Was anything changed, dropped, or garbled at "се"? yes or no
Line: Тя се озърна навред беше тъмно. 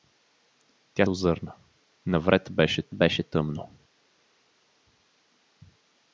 yes